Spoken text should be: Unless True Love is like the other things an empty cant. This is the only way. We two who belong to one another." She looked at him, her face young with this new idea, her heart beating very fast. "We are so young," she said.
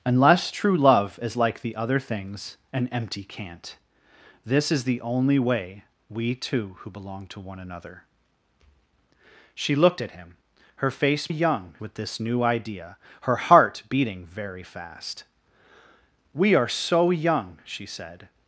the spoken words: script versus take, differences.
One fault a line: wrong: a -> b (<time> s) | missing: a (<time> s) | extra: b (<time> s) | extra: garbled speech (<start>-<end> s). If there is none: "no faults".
no faults